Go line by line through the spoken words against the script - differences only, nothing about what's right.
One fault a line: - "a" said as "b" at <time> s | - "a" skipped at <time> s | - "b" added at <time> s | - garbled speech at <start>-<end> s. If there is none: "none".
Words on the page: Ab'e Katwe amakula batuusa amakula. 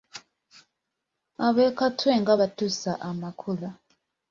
- "amakula" said as "nga" at 2.2 s